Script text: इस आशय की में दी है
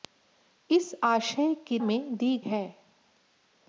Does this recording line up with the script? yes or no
yes